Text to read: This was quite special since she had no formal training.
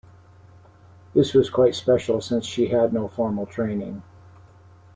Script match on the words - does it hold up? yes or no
yes